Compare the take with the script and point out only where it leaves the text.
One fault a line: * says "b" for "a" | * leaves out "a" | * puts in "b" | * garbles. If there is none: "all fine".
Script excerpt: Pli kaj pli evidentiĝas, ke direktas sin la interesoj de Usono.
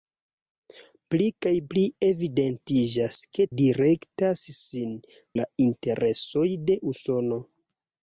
all fine